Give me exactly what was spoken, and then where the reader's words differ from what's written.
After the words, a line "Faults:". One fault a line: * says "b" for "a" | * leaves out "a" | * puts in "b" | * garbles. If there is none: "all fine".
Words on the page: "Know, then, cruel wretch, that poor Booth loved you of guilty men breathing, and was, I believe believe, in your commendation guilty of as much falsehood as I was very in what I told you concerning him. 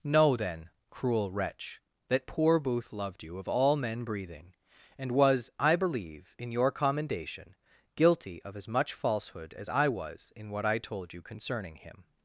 "Know, then, cruel wretch, that poor Booth loved you of all men breathing, and was, I believe, in your commendation guilty of as much falsehood as I was in what I told you concerning him.
Faults:
* says "all" for "guilty"
* leaves out "believe"
* leaves out "very"